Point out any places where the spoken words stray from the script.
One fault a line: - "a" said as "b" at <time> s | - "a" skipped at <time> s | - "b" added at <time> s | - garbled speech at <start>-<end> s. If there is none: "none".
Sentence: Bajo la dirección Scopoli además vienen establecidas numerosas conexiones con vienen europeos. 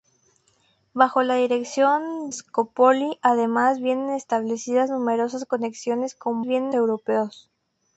none